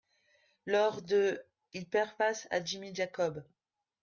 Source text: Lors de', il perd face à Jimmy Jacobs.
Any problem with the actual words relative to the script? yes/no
no